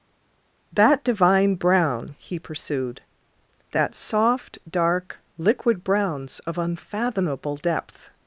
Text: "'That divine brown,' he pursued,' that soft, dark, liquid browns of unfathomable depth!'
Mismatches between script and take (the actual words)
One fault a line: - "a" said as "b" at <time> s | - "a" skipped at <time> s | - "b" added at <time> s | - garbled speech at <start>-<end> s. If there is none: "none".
none